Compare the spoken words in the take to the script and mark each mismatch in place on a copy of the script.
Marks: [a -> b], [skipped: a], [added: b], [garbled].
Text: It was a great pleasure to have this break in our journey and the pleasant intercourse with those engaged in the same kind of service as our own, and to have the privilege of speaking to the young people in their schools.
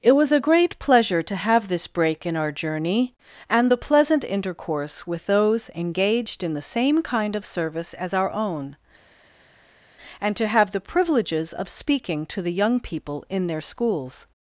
It was a great pleasure to have this break in our journey and the pleasant intercourse with those engaged in the same kind of service as our own, and to have the [privilege -> privileges] of speaking to the young people in their schools.